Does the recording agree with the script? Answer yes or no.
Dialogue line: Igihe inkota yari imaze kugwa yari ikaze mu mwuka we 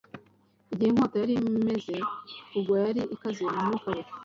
yes